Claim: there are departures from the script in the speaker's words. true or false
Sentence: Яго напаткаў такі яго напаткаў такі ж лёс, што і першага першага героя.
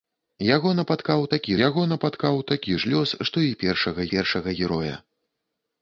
false